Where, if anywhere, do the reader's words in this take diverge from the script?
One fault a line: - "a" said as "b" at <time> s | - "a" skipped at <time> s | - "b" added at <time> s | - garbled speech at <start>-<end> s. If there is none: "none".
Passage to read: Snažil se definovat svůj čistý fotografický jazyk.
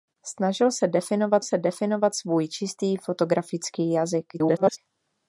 - "se definovat" added at 1.4 s
- garbled speech at 4.3-4.8 s